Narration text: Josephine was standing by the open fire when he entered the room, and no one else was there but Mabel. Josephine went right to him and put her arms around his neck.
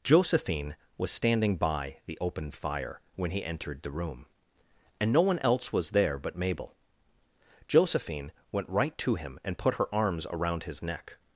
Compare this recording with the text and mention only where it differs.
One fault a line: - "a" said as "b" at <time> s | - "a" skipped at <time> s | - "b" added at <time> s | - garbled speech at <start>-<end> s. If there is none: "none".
none